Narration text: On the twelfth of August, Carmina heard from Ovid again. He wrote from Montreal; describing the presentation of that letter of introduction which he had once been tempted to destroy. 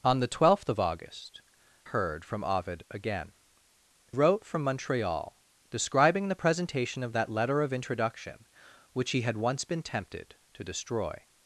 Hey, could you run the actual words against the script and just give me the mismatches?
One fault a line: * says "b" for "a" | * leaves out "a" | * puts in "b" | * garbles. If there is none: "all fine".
* leaves out "Carmina"
* leaves out "He"